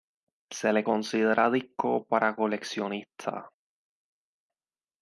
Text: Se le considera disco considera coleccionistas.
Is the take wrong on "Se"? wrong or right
right